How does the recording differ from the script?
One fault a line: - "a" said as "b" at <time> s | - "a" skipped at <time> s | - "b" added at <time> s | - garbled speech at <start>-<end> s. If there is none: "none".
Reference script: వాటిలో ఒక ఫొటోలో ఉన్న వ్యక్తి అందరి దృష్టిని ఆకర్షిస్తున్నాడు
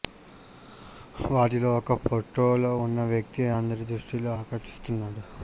none